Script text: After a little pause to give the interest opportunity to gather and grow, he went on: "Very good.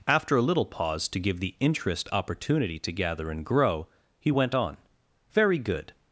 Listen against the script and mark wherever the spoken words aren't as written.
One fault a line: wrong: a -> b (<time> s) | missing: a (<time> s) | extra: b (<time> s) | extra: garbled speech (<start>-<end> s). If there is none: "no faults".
no faults